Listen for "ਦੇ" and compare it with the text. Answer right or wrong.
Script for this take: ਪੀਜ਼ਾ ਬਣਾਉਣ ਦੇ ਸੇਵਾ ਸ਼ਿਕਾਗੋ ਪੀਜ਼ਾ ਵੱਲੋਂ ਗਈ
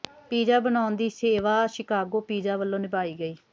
wrong